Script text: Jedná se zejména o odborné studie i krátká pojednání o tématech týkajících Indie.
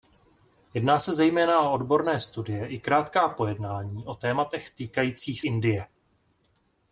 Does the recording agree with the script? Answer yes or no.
yes